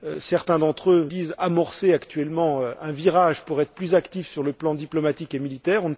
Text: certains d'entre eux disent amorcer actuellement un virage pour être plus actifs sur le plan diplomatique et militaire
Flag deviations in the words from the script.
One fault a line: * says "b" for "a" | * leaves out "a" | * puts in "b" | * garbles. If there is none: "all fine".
all fine